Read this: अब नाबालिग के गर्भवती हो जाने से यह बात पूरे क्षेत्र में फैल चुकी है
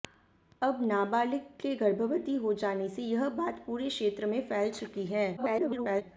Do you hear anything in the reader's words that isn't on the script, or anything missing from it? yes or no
yes